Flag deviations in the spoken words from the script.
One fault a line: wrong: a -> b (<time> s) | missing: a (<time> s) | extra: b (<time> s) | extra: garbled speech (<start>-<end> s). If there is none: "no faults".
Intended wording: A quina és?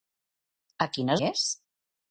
no faults